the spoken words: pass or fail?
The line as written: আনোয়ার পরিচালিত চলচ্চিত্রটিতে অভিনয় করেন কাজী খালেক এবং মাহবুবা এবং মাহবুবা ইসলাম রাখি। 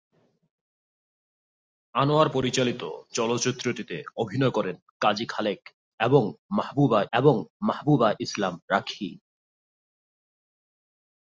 pass